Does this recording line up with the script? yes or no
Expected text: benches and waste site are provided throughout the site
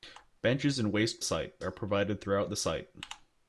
yes